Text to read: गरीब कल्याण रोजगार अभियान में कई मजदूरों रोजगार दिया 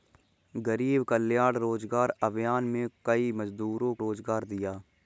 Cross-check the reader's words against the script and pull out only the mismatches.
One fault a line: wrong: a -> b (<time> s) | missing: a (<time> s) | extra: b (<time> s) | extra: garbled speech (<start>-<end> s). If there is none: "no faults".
no faults